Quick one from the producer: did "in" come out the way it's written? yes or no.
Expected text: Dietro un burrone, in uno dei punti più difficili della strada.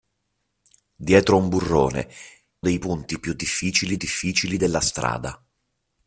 no